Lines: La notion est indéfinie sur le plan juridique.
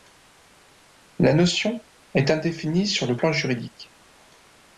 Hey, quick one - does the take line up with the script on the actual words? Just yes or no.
yes